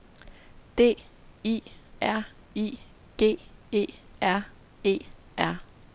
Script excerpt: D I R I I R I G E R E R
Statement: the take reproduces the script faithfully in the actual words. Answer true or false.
false